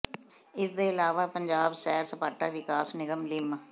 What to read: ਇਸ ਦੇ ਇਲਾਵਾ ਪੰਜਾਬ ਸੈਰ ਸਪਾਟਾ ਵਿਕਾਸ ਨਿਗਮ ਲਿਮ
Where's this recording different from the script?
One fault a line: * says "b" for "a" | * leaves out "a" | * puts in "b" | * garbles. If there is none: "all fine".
all fine